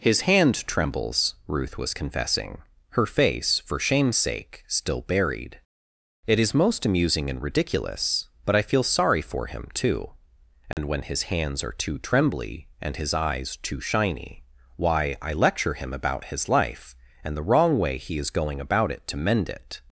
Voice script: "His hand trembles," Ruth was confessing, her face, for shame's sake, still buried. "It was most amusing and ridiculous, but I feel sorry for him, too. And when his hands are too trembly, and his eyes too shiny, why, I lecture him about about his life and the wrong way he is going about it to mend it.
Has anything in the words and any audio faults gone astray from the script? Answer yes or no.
yes